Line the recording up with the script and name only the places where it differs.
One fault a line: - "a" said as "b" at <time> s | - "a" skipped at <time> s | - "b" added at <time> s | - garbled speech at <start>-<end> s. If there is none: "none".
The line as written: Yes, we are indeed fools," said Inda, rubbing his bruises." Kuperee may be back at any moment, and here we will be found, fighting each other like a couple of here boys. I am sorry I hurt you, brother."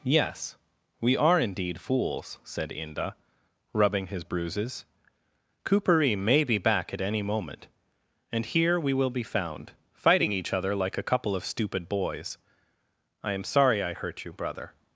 - "here" said as "stupid" at 11.4 s